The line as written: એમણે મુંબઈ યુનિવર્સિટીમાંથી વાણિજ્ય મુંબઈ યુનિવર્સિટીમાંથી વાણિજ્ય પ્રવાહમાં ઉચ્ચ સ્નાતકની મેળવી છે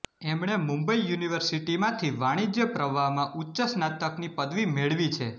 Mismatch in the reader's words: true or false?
true